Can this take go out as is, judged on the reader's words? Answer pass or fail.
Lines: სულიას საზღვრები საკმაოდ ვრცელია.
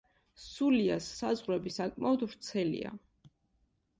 pass